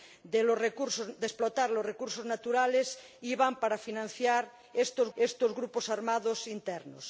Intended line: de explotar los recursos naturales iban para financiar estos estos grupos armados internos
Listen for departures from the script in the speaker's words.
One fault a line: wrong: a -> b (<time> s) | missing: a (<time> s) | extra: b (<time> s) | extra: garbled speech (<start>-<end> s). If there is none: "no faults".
no faults